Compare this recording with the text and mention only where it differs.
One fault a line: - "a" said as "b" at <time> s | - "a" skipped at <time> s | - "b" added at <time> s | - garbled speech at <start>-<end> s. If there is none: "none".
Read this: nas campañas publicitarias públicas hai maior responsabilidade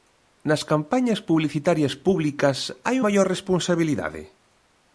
none